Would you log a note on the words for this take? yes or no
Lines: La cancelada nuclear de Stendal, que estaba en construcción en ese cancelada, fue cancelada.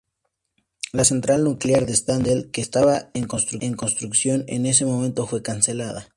yes